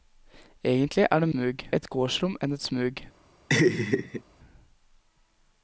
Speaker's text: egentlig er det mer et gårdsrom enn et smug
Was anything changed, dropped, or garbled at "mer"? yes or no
yes